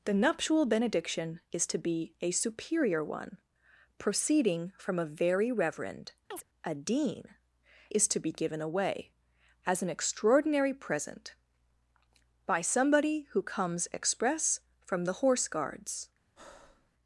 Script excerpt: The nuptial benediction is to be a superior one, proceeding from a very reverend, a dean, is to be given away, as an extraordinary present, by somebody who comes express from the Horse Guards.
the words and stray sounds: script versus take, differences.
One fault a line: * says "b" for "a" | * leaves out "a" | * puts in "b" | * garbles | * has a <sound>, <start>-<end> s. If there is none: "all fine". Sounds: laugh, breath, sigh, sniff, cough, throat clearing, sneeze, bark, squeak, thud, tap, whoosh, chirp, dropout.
* has a chirp, 6.3-6.5 s
* has a breath, 16.4-16.9 s